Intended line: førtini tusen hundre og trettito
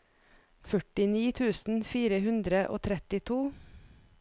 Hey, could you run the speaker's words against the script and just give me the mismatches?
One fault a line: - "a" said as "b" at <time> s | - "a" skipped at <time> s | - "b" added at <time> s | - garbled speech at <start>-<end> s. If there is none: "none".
- "fire" added at 1.9 s